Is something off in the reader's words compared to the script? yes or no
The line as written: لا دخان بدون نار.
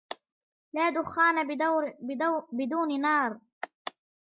no